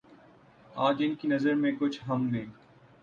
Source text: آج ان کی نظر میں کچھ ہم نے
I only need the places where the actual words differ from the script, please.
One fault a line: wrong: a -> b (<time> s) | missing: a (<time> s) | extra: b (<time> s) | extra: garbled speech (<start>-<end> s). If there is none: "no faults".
no faults